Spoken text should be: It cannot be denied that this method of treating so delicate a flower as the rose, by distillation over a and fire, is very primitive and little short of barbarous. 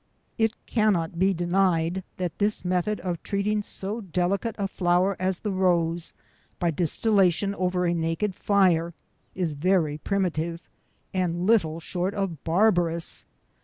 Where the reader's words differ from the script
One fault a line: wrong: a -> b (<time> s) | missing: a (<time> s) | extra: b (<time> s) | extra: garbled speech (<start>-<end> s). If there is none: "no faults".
wrong: and -> naked (7.9 s)